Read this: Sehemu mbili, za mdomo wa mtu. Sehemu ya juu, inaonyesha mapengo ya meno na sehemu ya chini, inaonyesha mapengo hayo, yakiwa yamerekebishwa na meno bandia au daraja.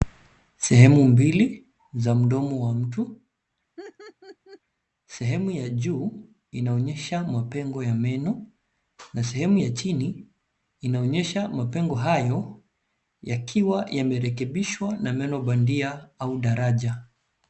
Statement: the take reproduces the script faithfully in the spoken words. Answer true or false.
true